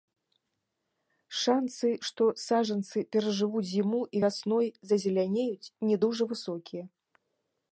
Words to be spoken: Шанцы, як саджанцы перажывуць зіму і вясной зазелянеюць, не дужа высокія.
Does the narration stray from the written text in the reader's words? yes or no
yes